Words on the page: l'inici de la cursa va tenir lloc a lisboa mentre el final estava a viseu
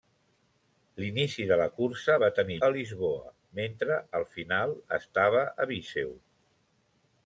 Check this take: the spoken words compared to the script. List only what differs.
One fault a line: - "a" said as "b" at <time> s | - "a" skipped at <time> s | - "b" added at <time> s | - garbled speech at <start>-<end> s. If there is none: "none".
- "lloc" skipped at 2.6 s